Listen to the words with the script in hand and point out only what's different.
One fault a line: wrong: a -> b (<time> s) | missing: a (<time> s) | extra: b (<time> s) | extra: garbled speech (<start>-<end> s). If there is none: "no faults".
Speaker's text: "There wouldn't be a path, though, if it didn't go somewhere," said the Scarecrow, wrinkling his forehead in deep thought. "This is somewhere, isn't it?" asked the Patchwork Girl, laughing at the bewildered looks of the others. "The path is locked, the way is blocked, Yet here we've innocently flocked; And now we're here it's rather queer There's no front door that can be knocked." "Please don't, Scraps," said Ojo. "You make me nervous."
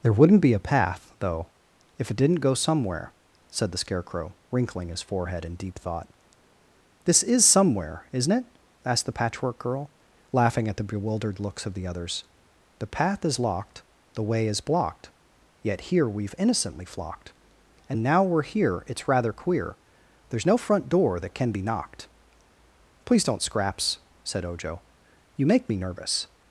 no faults